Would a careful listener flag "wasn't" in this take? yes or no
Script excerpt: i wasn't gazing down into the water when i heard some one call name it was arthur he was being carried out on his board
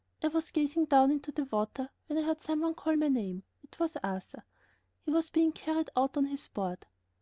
yes